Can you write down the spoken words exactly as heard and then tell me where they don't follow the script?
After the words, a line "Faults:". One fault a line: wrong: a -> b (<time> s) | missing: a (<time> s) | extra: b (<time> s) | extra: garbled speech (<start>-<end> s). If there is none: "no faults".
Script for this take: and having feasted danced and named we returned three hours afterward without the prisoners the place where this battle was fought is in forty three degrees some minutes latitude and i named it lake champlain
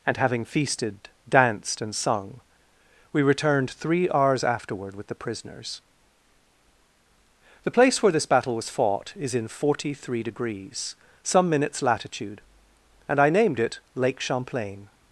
and having feasted danced and sung we returned three hours afterward with the prisoners the place where this battle was fought is in forty three degrees some minutes latitude and i named it lake champlain
Faults:
wrong: named -> sung (1.9 s)
wrong: without -> with (5.0 s)